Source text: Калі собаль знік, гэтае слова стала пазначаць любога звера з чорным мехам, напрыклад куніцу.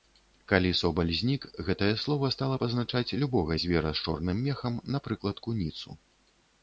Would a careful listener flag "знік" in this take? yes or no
no